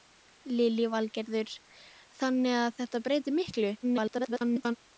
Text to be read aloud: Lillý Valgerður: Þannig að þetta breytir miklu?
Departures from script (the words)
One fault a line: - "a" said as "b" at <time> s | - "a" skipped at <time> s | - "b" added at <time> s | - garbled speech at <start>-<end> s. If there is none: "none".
- garbled speech at 3.8-4.8 s